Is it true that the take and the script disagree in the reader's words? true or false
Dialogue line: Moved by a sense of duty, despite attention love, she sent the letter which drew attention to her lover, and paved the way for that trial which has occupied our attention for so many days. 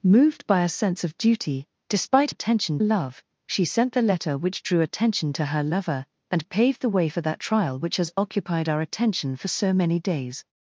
false